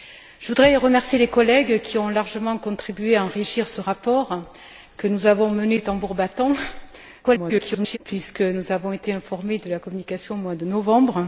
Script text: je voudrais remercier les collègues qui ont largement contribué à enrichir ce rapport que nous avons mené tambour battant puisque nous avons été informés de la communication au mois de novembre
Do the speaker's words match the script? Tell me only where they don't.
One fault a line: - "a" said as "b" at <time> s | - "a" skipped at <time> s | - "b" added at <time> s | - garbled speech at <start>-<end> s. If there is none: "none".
- garbled speech at 7.2-8.0 s